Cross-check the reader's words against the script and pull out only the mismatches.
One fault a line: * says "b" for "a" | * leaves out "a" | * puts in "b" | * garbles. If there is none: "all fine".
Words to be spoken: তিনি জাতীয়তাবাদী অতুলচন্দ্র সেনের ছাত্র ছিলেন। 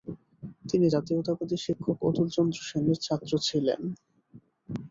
* puts in "শিক্ষক"